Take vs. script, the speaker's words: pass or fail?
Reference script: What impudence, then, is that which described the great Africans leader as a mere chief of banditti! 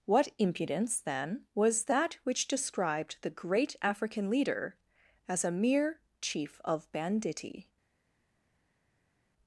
fail